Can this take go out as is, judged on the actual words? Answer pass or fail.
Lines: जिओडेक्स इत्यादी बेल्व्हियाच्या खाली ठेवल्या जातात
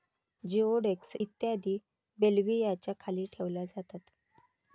pass